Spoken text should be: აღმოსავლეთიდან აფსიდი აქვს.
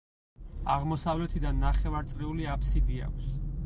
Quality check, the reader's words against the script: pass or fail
fail